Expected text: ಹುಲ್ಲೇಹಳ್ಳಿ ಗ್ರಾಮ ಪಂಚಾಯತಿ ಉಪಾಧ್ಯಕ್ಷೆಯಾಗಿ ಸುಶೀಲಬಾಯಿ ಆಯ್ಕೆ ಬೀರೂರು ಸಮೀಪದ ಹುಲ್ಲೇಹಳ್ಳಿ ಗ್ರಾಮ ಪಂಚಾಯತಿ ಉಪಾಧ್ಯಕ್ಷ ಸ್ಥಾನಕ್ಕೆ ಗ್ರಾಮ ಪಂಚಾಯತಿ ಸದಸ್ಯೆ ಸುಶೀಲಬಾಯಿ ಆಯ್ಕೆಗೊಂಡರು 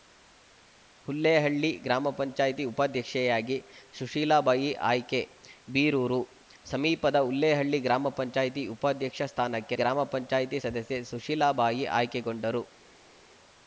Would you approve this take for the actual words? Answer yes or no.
yes